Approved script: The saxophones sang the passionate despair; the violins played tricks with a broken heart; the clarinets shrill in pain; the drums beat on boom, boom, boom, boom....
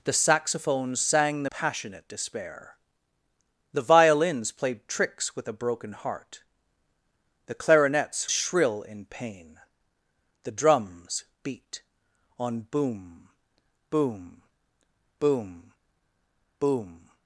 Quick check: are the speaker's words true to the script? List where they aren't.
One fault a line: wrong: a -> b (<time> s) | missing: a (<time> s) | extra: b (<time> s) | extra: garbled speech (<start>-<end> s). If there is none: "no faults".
no faults